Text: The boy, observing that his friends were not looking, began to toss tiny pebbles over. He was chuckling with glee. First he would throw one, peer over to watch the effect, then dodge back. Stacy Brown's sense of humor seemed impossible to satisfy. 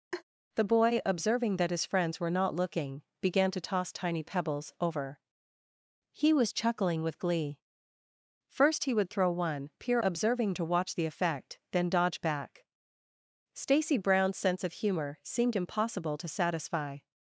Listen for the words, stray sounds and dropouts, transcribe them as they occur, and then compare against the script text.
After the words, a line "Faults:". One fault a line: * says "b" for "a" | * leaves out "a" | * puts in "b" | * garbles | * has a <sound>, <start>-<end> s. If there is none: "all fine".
The boy, observing that his friends were not looking, began to toss tiny pebbles over. He was chuckling with glee. First he would throw one, peer observing to watch the effect, then dodge back. Stacy Brown's sense of humor seemed impossible to satisfy.
Faults:
* has a laugh, 0.1-0.2 s
* says "observing" for "over"